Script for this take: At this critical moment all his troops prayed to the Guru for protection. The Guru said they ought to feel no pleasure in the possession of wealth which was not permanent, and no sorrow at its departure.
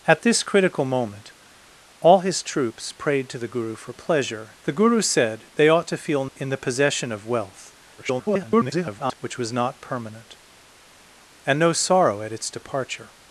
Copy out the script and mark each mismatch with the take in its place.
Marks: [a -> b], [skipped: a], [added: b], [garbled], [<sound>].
At this critical moment all his troops prayed to the Guru for [protection. -> pleasure] The Guru said they ought to feel [skipped: no pleasure] in the possession of wealth [garbled] which was not permanent, and no sorrow at its departure.